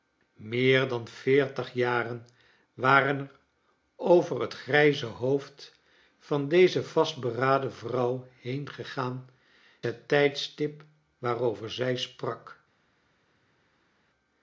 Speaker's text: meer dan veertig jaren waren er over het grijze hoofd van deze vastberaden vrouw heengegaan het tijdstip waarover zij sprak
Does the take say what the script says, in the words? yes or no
yes